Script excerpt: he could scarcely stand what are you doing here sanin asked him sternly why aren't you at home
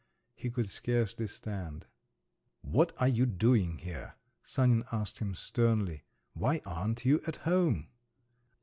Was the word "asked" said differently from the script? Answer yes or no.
no